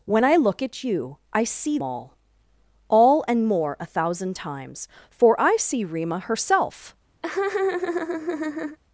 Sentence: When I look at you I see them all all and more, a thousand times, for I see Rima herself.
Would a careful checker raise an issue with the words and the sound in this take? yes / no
yes